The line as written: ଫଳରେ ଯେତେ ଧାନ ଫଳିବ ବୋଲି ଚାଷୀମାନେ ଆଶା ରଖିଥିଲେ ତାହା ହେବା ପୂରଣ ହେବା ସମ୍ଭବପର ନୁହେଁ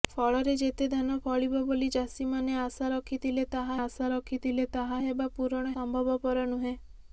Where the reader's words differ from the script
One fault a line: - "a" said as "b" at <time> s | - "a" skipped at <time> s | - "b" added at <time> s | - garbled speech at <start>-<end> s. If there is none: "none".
- "ଆଶା ରଖିଥିଲେ ତାହା" added at 3.8 s
- "ହେବା" skipped at 5.8 s